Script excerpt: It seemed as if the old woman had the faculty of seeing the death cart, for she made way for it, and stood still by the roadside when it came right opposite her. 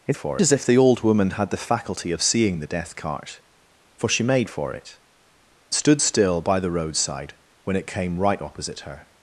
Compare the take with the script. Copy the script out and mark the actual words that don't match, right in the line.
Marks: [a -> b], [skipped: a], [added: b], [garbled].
It [seemed -> for] as if the old woman had the faculty of seeing the death cart, for she made [skipped: way] for it, [skipped: and] stood still by the roadside when it came right opposite her.